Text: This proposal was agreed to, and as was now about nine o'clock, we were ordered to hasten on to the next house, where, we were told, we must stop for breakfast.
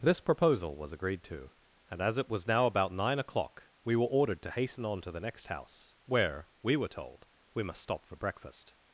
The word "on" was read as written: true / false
true